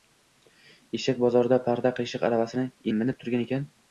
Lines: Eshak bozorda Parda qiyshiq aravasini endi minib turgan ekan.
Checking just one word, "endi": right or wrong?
wrong